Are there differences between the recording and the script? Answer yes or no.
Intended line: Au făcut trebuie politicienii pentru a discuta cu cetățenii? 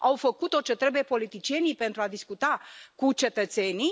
yes